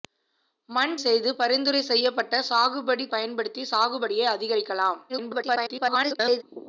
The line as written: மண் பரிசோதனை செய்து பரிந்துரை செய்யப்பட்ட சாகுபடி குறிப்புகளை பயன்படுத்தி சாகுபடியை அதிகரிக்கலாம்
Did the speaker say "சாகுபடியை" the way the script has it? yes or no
yes